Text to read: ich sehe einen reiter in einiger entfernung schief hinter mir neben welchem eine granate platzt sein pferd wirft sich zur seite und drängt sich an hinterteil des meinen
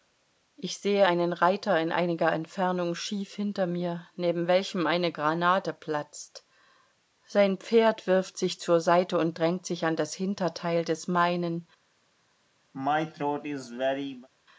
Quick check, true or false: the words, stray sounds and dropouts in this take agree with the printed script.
false